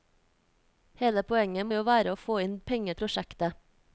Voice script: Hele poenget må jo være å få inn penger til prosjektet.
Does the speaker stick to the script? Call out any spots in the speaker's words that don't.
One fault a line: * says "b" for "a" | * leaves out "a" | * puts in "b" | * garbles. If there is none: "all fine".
* leaves out "må"
* leaves out "til"